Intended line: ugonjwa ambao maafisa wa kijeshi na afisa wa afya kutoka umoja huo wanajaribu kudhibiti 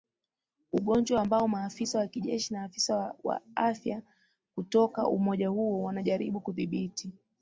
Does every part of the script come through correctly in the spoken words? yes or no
yes